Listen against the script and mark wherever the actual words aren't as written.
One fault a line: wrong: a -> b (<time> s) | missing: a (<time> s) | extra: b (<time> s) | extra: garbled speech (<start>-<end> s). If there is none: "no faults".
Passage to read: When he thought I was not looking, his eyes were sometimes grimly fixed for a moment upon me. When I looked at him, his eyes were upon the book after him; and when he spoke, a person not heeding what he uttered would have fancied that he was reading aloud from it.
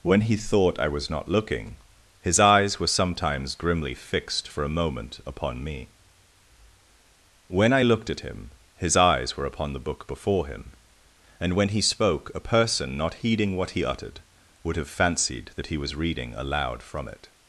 wrong: after -> before (10.1 s)